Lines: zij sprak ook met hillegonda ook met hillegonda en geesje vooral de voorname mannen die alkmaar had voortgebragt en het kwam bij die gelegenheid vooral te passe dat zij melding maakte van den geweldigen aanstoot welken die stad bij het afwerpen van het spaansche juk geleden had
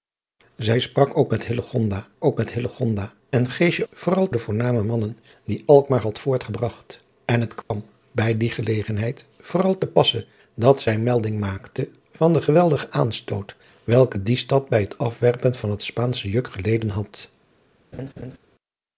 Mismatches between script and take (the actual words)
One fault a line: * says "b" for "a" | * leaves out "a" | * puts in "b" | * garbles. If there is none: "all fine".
all fine